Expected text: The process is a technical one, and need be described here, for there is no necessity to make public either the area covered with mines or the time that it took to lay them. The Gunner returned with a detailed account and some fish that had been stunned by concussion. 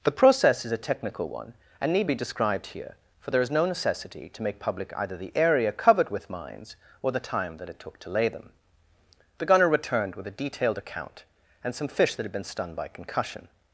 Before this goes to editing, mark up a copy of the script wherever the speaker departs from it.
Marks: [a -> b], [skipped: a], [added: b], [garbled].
The process is a technical one, and need be described here, for there is no necessity to make public either the area covered with mines or the time that it took to lay them. The Gunner returned with a detailed account and some fish that had been stunned by concussion.